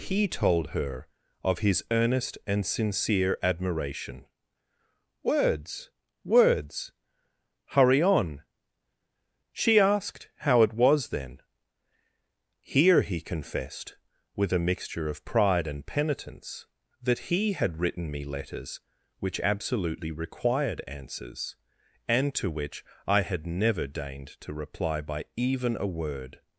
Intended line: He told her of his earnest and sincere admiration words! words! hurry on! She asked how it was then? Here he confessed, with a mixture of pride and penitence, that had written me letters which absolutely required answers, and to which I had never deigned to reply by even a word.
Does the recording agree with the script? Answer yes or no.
no